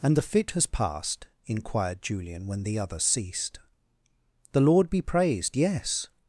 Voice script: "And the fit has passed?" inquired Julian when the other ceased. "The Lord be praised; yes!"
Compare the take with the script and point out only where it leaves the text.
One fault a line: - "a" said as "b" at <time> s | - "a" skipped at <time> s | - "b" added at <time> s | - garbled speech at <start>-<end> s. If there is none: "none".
none